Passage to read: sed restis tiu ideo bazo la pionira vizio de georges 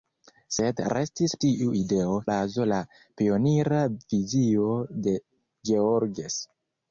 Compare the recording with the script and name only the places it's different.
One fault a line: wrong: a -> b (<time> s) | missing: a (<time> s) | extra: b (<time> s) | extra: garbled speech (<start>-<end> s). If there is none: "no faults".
no faults